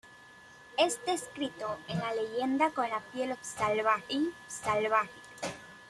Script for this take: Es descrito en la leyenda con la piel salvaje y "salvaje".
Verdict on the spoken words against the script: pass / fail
pass